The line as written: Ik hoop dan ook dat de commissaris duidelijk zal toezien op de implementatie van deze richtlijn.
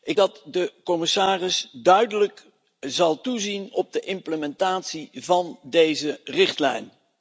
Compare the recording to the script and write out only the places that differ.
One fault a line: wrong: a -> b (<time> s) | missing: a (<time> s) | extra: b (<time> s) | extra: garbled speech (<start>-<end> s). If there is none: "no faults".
missing: hoop dan ook (0.2 s)